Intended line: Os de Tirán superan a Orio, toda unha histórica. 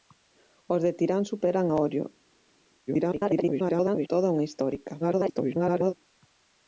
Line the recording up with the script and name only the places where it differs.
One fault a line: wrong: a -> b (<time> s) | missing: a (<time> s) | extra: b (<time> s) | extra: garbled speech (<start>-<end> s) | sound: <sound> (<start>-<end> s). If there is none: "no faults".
extra: garbled speech (2.9-4.1 s)
extra: garbled speech (5.0-5.9 s)